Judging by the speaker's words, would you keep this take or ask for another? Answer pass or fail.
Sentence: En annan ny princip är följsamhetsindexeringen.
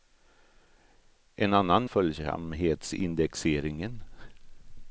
fail